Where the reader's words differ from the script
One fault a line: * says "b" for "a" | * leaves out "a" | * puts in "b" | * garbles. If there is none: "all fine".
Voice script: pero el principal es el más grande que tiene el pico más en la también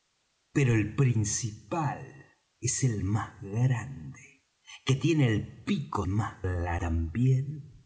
all fine